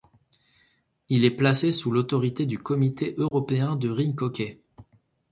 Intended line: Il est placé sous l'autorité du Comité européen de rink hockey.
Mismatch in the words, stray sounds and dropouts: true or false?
true